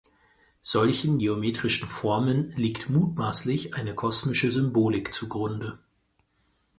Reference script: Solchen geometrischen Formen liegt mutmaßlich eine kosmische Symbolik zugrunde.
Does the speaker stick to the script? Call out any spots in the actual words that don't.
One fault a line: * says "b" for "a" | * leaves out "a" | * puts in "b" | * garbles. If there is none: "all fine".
all fine